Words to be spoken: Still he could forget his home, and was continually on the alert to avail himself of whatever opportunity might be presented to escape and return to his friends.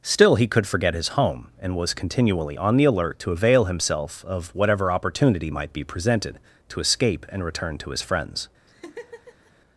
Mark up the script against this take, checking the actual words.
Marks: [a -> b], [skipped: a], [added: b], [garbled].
Still he could forget his home, and was continually on the alert to avail himself of whatever opportunity might be presented to escape and return to his friends.